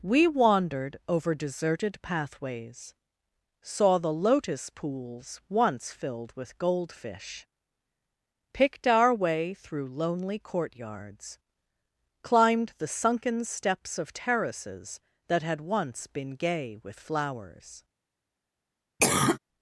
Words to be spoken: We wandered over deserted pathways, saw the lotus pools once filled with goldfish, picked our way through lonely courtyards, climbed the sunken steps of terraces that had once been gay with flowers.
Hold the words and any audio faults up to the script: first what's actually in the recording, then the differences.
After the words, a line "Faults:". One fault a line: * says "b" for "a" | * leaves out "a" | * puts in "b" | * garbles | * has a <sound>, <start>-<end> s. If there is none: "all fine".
We wandered over deserted pathways, saw the lotus pools once filled with goldfish, picked our way through lonely courtyards, climbed the sunken steps of terraces that had once been gay with flowers.
Faults:
* has a cough, 19.0-19.4 s